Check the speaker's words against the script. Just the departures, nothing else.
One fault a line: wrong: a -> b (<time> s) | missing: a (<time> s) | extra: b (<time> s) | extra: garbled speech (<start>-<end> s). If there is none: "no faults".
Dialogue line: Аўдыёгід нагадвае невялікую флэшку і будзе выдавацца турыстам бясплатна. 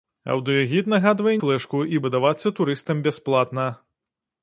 missing: невялікую (1.3 s)
missing: будзе (2.0 s)